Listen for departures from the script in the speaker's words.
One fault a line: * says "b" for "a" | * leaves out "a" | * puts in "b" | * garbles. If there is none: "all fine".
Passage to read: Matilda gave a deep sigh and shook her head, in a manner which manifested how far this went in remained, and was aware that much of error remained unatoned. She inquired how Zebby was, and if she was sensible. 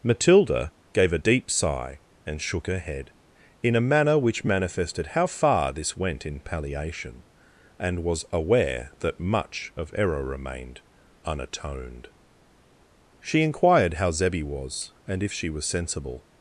* says "palliation" for "remained"